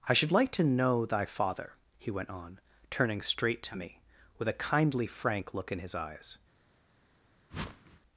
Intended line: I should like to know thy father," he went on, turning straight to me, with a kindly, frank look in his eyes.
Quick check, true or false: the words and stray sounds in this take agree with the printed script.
false